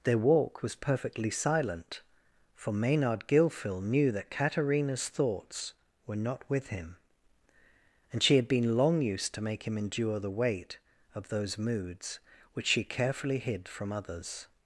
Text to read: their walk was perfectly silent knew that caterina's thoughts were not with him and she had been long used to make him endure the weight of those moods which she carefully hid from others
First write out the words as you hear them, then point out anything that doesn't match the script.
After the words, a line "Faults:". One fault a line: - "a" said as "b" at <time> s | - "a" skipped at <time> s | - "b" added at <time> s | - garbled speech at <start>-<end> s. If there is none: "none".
their walk was perfectly silent for maynard gilfil knew that caterina's thoughts were not with him and she had been long used to make him endure the weight of those moods which she carefully hid from others
Faults:
- "for maynard gilfil" added at 2.5 s